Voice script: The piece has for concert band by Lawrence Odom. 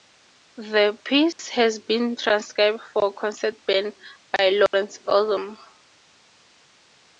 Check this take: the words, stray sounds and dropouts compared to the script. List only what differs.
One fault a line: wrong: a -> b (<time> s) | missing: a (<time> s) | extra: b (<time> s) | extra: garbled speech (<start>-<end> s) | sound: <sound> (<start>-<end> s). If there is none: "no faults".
sound: dropout (1.3-1.4 s)
extra: been transcribed (1.8 s)
sound: dropout (4.7-4.7 s)